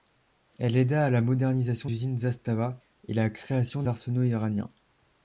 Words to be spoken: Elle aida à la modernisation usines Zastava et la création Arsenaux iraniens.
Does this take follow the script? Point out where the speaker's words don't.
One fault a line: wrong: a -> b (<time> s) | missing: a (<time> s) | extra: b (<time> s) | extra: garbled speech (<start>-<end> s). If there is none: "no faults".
no faults